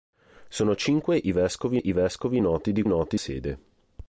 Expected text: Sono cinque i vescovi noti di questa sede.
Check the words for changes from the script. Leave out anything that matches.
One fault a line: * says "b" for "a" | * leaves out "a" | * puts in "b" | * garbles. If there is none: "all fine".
* puts in "i vescovi"
* says "noti" for "questa"